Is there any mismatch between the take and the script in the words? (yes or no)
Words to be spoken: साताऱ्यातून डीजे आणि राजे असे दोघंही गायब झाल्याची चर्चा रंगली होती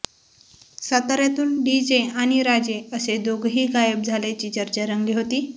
no